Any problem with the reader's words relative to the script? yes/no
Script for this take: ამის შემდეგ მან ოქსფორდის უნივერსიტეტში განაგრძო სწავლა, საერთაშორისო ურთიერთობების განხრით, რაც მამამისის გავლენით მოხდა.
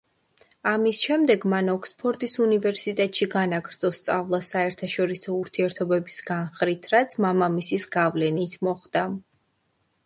no